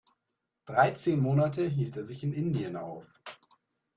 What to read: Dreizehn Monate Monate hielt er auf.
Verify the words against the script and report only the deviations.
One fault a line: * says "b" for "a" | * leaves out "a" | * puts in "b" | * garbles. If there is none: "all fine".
* leaves out "Monate"
* puts in "sich in Indien"